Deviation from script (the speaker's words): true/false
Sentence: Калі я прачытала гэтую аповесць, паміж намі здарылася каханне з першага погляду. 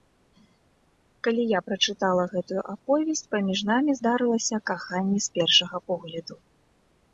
false